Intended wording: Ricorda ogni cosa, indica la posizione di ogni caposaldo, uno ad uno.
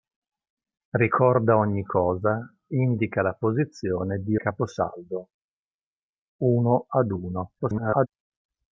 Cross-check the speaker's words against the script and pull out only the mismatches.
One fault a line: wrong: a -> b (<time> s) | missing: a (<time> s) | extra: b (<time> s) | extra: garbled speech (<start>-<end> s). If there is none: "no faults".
missing: ogni (4.3 s)
extra: garbled speech (7.6-8.1 s)